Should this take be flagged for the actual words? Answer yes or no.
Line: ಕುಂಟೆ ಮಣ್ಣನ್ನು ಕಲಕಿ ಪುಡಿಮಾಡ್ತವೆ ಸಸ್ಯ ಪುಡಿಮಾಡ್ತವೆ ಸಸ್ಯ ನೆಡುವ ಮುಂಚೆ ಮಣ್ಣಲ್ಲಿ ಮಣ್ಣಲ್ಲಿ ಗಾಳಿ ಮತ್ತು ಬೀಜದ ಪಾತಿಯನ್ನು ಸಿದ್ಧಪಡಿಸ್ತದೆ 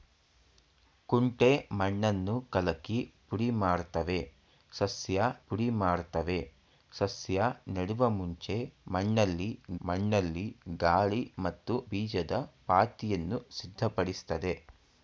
no